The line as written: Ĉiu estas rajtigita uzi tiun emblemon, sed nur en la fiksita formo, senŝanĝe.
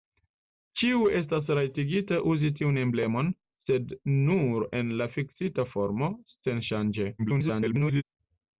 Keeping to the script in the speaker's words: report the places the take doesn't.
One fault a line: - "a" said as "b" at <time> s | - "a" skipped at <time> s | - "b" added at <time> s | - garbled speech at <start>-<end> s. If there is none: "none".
- garbled speech at 7.2-8.0 s